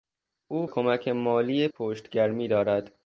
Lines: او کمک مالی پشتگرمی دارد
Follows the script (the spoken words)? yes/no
yes